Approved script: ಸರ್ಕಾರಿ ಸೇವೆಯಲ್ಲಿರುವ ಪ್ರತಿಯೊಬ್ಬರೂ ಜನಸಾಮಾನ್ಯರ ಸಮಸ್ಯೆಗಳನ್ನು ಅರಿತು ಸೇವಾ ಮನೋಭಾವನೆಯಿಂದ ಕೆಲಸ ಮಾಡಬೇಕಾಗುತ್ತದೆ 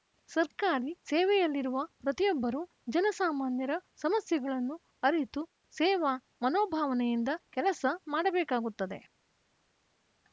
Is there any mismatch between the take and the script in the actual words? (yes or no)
no